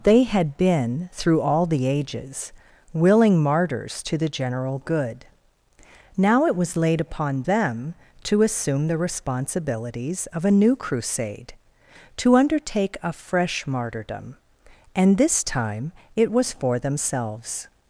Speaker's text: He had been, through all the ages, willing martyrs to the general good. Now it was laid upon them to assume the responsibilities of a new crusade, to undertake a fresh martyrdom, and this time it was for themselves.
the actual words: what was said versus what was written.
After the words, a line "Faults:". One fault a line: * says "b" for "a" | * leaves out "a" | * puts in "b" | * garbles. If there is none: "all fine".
They had been, through all the ages, willing martyrs to the general good. Now it was laid upon them to assume the responsibilities of a new crusade, to undertake a fresh martyrdom, and this time it was for themselves.
Faults:
* says "They" for "He"